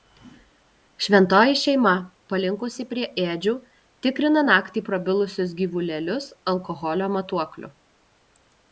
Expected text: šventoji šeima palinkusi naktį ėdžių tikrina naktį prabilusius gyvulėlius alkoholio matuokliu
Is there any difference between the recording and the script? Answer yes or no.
yes